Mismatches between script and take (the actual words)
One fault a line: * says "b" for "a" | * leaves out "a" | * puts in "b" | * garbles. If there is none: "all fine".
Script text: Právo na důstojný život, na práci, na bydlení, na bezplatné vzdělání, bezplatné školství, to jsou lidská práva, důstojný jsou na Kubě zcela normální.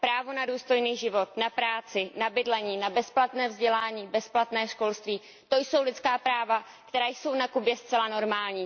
* says "která" for "důstojný"